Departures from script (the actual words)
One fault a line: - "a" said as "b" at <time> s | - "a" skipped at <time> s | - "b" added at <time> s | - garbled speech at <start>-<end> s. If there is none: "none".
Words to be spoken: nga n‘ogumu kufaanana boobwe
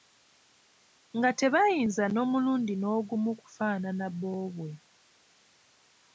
- "tebayinza n‘omulundi" added at 1.4 s